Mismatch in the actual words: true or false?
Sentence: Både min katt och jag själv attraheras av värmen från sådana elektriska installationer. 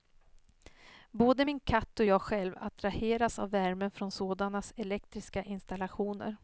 false